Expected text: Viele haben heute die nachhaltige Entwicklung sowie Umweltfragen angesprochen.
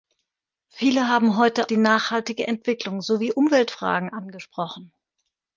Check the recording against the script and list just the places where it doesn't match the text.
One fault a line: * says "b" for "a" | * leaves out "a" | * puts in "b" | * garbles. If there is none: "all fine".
all fine